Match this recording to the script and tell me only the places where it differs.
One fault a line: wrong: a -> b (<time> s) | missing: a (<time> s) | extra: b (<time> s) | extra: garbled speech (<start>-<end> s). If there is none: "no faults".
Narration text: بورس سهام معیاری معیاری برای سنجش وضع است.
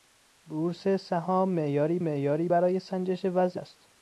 no faults